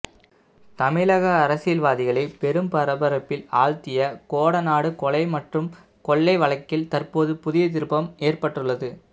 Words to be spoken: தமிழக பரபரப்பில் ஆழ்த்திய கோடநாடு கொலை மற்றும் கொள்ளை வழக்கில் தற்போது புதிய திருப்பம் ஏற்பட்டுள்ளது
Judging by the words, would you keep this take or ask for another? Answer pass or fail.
fail